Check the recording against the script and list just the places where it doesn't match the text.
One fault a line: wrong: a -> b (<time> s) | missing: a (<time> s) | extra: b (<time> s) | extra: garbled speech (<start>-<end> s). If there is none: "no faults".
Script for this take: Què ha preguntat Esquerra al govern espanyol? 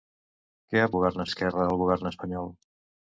wrong: preguntat -> govern (1.0 s)